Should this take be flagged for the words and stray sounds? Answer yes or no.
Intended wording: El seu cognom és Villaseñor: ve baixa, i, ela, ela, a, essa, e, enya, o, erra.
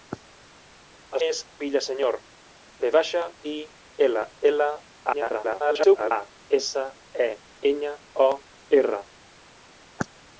yes